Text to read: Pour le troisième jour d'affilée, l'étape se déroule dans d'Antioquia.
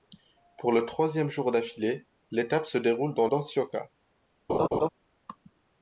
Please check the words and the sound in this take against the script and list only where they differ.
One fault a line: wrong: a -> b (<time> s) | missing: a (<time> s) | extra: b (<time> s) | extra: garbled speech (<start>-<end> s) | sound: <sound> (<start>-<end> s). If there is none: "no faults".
sound: laugh (4.5-4.9 s)